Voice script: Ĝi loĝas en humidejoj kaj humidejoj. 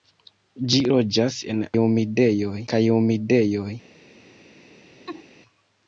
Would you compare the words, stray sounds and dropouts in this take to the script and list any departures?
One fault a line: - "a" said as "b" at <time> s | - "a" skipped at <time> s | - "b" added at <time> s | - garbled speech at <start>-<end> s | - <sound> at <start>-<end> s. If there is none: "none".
- laugh at 5.1-5.2 s